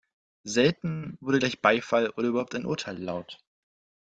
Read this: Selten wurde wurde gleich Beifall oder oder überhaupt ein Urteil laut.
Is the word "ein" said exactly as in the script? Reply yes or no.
yes